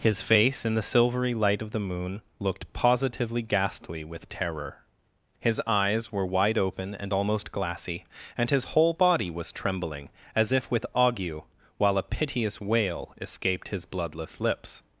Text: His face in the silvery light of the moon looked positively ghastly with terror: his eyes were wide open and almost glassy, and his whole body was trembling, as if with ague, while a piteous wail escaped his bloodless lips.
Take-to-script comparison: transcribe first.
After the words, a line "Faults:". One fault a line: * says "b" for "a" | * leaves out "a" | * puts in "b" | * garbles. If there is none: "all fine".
His face in the silvery light of the moon looked positively ghastly with terror: his eyes were wide open and almost glassy, and his whole body was trembling, as if with ague, while a piteous wail escaped his bloodless lips.
Faults:
all fine